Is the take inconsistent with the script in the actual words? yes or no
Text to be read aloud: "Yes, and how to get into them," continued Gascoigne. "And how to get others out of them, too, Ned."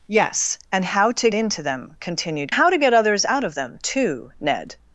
yes